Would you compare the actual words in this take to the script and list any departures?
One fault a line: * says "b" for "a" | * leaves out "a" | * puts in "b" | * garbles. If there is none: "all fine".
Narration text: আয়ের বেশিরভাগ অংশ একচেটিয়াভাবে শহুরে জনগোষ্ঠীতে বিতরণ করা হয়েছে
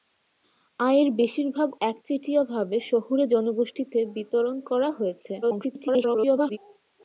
* leaves out "অংশ"
* garbles